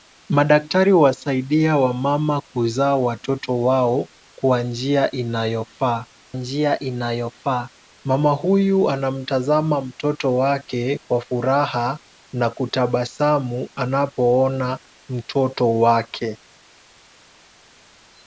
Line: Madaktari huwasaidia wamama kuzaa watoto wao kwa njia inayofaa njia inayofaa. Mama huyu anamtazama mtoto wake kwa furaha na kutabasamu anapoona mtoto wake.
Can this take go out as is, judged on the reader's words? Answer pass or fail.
pass